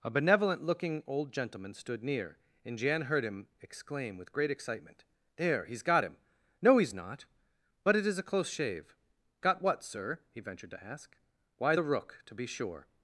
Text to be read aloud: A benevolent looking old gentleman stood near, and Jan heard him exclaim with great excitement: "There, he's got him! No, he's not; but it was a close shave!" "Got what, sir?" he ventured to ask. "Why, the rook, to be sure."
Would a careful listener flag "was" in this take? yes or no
yes